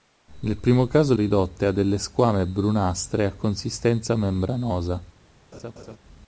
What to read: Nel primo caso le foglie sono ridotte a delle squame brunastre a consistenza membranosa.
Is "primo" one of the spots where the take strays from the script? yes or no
no